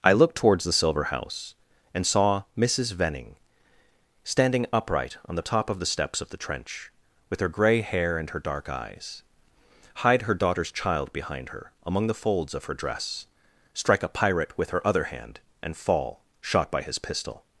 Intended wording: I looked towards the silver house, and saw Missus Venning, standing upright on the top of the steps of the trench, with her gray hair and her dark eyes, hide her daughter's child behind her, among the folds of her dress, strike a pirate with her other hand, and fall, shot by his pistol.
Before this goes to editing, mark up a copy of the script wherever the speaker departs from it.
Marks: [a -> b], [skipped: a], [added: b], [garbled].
I looked towards the silver house, and saw Missus Venning, standing upright on the top of the steps of the trench, with her gray hair and her dark eyes, hide her daughter's child behind her, among the folds of her dress, strike a pirate with her other hand, and fall, shot by his pistol.